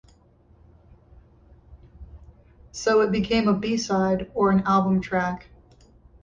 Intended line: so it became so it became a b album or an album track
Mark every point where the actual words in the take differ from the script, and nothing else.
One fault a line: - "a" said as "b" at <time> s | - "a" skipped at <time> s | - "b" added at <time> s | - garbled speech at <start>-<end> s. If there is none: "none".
- "so it became" skipped at 3.5 s
- "album" said as "side" at 3.8 s